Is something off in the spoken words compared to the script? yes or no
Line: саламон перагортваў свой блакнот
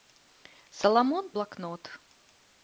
yes